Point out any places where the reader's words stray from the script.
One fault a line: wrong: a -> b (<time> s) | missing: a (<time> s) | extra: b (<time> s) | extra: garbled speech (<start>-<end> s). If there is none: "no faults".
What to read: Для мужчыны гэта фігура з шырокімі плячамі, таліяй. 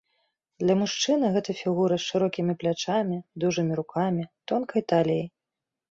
extra: дужымі рукамі тонкай (3.5 s)